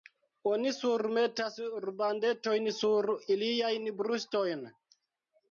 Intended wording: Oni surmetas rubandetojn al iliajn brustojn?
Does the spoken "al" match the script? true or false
false